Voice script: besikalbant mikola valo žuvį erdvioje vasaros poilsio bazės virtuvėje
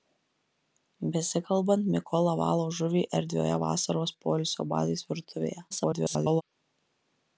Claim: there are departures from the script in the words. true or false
true